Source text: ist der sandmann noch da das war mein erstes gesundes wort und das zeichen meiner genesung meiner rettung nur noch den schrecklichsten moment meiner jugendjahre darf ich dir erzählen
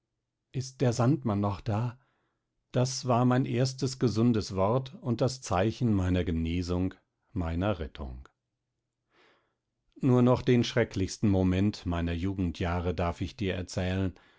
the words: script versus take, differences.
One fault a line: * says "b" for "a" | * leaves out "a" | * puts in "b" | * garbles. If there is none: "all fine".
all fine